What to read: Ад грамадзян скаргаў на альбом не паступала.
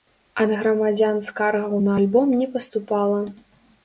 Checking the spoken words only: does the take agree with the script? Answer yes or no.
yes